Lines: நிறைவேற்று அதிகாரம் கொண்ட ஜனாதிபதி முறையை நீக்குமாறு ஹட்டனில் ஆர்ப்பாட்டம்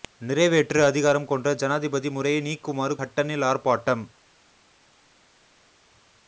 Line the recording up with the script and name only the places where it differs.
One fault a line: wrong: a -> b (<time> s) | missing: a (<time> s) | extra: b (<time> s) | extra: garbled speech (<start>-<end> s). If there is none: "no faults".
no faults